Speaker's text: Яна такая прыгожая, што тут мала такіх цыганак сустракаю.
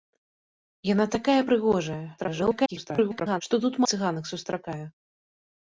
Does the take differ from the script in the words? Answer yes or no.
yes